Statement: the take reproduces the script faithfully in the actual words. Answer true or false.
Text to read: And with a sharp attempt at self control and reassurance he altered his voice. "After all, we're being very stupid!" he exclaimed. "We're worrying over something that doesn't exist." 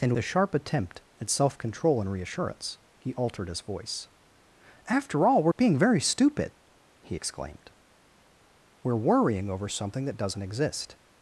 false